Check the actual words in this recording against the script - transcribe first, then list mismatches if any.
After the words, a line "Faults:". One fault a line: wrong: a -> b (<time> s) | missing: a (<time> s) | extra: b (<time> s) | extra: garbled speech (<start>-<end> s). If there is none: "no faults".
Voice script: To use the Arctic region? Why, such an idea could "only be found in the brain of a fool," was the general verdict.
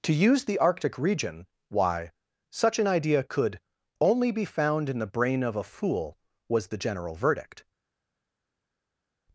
To use the Arctic region? Why, such an idea could "only be found in the brain of a fool," was the general verdict.
Faults:
no faults